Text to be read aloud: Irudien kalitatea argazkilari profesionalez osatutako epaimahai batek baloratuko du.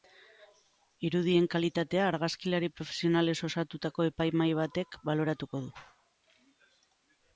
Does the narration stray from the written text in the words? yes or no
no